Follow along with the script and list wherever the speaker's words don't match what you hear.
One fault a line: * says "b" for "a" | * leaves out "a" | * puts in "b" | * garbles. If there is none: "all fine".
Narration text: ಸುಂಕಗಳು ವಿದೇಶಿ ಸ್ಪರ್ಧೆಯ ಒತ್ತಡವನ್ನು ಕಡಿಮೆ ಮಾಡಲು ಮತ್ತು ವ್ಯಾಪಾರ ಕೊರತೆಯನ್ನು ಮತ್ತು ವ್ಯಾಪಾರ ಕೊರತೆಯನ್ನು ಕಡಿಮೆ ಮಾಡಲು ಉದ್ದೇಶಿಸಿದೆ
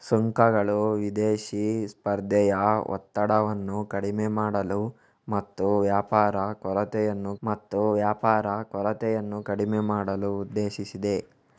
all fine